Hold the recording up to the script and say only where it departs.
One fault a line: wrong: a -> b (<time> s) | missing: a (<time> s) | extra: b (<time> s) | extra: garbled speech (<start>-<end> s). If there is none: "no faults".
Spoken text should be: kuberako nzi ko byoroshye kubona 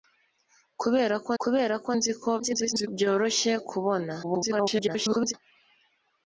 extra: kuberako (1.4 s)
extra: garbled speech (2.4-2.9 s)
extra: garbled speech (4.2-5.3 s)